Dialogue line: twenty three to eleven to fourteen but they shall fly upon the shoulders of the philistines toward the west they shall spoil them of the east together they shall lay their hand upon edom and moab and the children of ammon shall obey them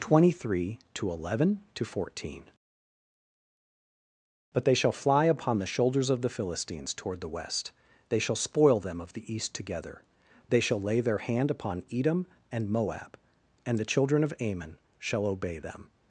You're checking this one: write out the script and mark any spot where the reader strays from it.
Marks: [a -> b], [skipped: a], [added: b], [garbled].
twenty three to eleven to fourteen but they shall fly upon the shoulders of the philistines toward the west they shall spoil them of the east together they shall lay their hand upon edom and moab and the children of ammon shall obey them